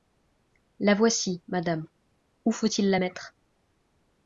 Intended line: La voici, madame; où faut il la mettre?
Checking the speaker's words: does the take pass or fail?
pass